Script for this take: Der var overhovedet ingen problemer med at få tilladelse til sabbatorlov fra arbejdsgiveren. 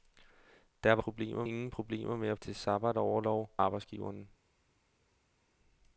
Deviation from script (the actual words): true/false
true